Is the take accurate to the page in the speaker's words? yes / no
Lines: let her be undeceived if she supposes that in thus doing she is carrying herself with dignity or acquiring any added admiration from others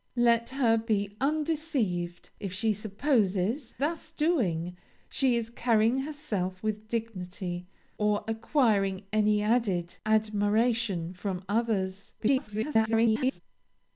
no